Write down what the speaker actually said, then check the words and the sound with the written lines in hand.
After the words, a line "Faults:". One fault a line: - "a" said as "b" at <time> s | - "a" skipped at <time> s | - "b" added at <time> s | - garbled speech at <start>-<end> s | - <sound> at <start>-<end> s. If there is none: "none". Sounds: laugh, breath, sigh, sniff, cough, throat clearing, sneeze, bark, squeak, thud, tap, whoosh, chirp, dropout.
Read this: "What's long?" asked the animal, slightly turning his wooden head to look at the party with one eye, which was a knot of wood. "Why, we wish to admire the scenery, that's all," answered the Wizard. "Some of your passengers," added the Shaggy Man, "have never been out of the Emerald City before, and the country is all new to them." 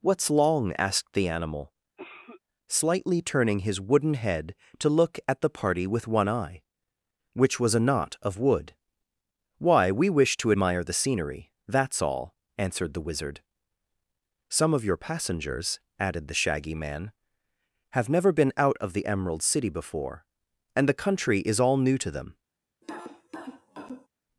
"What's long?" asked the animal, slightly turning his wooden head to look at the party with one eye, which was a knot of wood. "Why, we wish to admire the scenery, that's all," answered the Wizard. "Some of your passengers," added the Shaggy Man, "have never been out of the Emerald City before, and the country is all new to them."
Faults:
- cough at 2.0-2.4 s
- cough at 22.8-24.1 s